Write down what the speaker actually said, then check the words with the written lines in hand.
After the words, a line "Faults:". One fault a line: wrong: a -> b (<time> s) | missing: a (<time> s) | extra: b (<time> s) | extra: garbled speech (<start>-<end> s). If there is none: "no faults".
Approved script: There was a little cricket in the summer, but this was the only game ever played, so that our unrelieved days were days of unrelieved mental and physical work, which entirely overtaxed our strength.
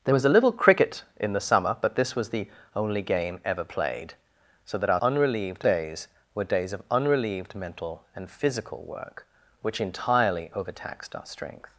There was a little cricket in the summer, but this was the only game ever played, so that our unrelieved days were days of unrelieved mental and physical work, which entirely overtaxed our strength.
Faults:
no faults